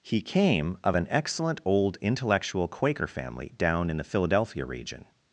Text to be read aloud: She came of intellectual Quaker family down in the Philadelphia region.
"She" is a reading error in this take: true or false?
true